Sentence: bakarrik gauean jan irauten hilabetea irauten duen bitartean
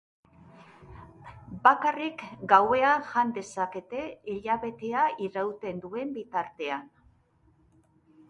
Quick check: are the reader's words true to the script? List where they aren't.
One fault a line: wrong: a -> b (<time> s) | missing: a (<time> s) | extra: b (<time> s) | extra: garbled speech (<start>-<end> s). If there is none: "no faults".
wrong: irauten -> dezakete (3.4 s)